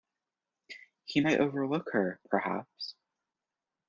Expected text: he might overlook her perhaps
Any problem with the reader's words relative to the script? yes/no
no